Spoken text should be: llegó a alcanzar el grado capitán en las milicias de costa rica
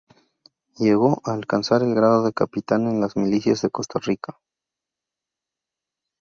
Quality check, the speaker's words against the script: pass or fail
fail